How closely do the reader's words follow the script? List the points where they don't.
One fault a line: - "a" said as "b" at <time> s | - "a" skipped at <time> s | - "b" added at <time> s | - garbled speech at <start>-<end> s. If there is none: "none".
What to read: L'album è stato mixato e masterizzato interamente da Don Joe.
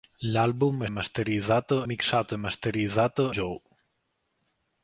- "stato" said as "masterizzato" at 0.9 s
- "interamente da Don" skipped at 3.3 s